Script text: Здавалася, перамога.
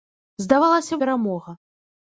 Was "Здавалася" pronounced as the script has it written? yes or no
yes